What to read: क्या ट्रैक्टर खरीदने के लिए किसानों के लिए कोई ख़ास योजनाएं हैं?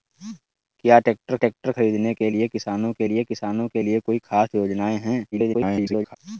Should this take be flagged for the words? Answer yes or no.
yes